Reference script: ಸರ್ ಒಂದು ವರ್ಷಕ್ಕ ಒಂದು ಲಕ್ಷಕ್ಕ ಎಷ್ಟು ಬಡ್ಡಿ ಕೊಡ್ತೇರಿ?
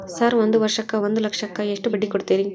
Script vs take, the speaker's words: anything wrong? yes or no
no